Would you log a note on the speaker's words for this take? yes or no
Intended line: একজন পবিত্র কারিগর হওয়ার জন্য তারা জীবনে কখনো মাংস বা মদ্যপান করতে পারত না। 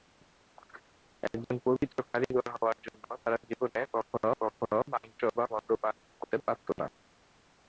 yes